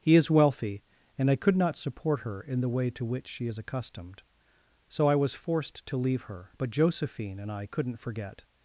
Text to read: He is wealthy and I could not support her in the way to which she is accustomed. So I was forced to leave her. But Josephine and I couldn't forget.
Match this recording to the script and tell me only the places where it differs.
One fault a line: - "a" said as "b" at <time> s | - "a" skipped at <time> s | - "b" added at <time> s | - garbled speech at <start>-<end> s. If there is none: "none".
none